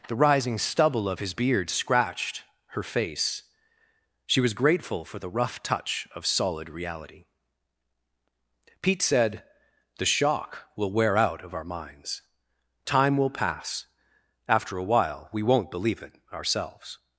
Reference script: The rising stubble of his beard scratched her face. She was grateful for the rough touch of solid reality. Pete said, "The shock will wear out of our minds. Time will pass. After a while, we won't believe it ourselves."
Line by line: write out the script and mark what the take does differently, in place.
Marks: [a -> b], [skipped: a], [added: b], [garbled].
The rising stubble of his beard scratched her face. She was grateful for the rough touch of solid reality. Pete said, "The shock will wear out of our minds. Time will pass. After a while, we won't believe it ourselves."